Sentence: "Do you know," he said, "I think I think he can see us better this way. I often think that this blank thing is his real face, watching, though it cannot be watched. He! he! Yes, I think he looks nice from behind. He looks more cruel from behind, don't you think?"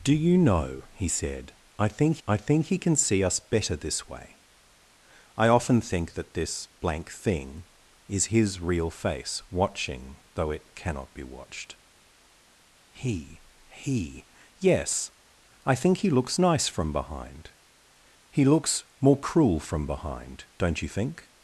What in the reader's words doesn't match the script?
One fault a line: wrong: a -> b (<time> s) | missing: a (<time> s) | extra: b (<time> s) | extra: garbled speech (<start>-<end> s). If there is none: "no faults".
no faults